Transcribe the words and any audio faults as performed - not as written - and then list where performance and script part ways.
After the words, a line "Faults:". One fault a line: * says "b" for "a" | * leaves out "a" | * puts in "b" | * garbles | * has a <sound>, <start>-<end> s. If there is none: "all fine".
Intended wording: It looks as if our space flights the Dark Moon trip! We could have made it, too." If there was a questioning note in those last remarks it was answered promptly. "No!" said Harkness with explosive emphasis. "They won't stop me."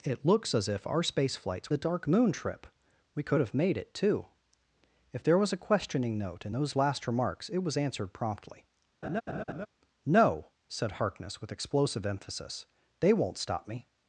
It looks as if our space flights the Dark Moon trip! We could have made it, too." If there was a questioning note in those last remarks it was answered promptly. "No!" said Harkness with explosive emphasis. "They won't stop me."
Faults:
* has a laugh, 9.0-9.7 s